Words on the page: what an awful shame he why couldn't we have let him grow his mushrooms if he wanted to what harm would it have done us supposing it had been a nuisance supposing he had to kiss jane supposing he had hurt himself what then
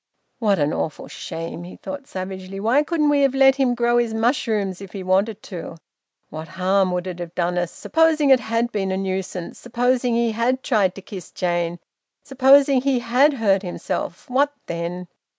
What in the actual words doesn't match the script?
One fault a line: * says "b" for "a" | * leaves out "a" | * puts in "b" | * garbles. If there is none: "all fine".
* puts in "thought savagely"
* puts in "tried"